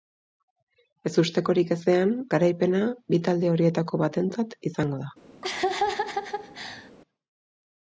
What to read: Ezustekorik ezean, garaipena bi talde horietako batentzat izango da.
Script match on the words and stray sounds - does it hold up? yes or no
no